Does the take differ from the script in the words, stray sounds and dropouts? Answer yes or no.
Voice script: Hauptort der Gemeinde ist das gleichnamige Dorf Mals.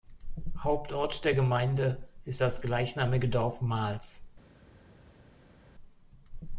no